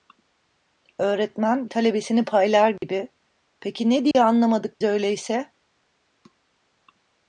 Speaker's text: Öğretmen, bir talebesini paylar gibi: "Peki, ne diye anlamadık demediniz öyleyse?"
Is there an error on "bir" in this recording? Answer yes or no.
yes